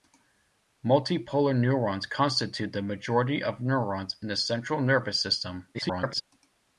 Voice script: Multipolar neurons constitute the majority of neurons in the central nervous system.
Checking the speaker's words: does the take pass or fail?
fail